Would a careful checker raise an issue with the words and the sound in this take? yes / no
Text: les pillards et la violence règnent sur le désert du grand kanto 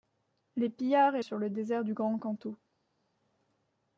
yes